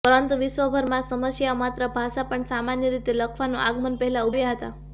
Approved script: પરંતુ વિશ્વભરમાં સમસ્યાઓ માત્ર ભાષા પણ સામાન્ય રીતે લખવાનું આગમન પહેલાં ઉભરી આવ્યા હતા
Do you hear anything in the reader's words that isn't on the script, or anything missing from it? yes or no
yes